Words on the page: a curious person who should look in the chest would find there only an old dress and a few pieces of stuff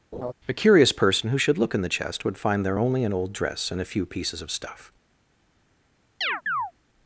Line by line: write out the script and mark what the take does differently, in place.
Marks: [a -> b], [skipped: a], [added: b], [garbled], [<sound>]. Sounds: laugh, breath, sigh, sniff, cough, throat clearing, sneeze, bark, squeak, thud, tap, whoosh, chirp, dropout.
[laugh] a curious person who should look in the chest would find there only an old dress and a few pieces of stuff [chirp]